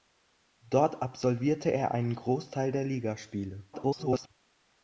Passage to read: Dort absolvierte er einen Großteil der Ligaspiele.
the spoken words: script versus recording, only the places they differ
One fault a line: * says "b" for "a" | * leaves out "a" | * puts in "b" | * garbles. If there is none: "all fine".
* garbles